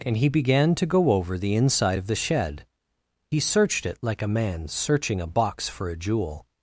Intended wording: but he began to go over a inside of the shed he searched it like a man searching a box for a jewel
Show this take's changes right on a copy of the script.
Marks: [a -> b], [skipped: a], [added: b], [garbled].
[but -> and] he began to go over [a -> the] inside of the shed he searched it like a man searching a box for a jewel